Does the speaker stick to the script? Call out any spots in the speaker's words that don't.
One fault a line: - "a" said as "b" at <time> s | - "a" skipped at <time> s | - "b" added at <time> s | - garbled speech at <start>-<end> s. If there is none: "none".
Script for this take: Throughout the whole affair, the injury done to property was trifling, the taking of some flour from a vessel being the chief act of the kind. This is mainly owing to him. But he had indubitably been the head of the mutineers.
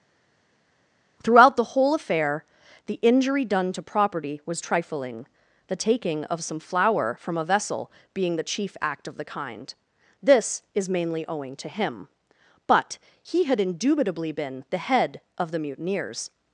none